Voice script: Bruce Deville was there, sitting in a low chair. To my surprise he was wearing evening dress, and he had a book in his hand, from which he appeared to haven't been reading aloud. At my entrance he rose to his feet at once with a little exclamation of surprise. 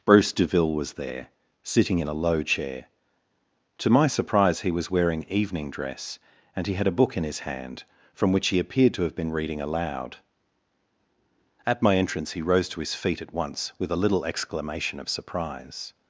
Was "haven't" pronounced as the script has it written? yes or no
no